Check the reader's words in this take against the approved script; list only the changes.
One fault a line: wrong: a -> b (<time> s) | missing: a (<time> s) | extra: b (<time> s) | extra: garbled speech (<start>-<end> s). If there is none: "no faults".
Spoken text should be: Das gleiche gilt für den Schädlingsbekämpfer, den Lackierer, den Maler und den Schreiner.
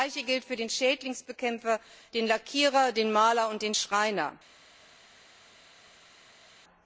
no faults